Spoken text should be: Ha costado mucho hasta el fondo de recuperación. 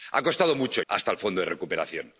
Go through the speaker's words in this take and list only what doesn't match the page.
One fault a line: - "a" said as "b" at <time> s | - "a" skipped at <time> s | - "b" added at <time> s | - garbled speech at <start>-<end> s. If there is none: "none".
none